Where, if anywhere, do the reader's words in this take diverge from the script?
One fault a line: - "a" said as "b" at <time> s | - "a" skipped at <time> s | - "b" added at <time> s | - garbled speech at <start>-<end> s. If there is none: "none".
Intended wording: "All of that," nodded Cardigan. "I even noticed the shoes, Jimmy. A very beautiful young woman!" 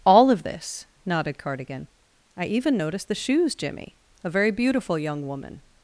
- "that" said as "this" at 0.4 s